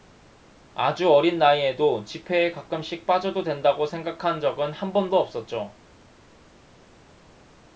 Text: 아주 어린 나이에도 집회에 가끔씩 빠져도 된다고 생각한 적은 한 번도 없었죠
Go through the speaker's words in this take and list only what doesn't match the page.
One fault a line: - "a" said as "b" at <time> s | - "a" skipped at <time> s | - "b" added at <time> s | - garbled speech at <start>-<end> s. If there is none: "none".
none